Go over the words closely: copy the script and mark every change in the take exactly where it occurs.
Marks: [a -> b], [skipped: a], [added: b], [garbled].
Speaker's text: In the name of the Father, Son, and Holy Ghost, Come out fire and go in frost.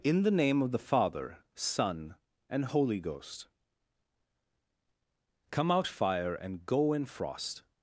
In the name of the Father, Son, and Holy Ghost, Come out fire and go in frost.